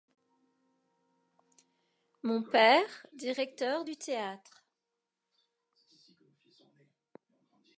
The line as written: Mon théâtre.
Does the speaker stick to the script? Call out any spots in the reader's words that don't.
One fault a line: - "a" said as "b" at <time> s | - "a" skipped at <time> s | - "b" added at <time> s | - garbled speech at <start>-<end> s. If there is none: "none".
- "père directeur du" added at 2.4 s